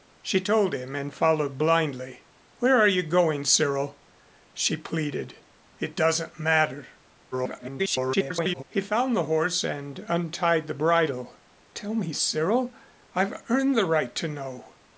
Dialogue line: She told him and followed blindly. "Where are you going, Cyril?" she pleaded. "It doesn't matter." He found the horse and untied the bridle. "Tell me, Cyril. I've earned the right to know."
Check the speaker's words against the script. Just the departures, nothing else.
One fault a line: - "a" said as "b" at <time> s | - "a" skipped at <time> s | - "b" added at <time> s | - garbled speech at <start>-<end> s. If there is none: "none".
- garbled speech at 7.3-8.6 s